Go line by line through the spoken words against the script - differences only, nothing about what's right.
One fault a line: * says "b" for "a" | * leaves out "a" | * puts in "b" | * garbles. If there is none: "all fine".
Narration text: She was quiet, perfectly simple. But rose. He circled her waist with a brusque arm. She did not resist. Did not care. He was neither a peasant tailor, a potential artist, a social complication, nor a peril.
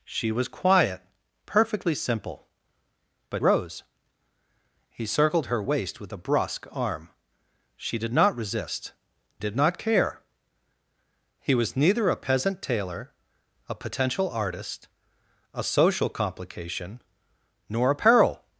all fine